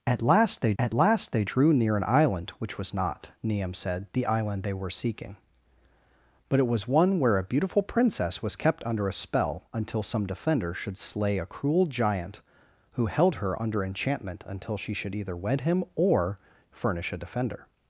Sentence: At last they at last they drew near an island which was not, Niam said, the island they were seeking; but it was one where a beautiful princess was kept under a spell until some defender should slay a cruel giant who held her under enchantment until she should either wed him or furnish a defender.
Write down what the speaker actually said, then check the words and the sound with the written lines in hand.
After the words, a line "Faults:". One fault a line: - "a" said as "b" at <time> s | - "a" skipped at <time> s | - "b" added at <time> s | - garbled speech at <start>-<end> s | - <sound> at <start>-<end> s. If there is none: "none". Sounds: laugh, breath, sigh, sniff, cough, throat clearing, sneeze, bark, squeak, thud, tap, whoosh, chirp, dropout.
At last they at last they drew near an island which was not, Niam said, the island they were seeking; but it was one where a beautiful princess was kept under a spell until some defender should slay a cruel giant who held her under enchantment until she should either wed him or furnish a defender.
Faults:
none